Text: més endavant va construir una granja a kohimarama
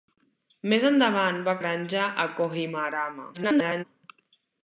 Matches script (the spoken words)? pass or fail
fail